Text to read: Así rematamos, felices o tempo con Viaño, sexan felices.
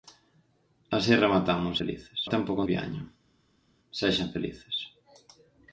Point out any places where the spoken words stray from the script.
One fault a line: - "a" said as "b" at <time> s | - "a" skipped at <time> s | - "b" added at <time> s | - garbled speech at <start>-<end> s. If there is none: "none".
none